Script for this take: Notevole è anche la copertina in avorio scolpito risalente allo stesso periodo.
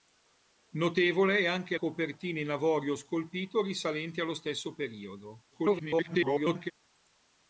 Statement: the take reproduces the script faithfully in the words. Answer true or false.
false